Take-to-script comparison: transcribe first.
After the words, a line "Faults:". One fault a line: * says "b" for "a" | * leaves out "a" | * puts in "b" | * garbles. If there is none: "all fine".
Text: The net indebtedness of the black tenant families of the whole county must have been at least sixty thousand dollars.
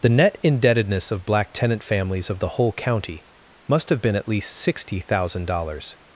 The net indebtedness of black tenant families of the whole county must have been at least sixty thousand dollars.
Faults:
* leaves out "the"